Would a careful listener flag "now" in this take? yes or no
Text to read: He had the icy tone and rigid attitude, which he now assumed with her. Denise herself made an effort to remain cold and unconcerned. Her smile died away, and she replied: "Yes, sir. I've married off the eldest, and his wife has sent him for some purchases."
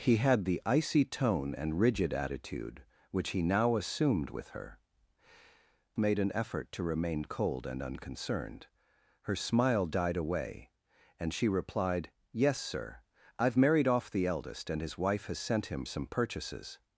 no